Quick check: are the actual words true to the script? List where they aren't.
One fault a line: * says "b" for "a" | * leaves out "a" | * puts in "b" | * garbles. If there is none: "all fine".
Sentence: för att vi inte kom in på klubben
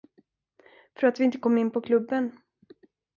all fine